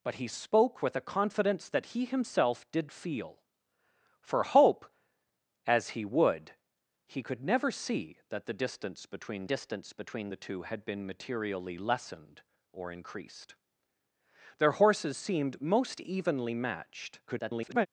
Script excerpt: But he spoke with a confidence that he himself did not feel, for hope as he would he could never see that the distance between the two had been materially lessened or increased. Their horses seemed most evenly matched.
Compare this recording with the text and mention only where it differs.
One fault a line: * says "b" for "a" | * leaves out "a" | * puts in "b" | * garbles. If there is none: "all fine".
* leaves out "not"
* puts in "distance between"
* garbles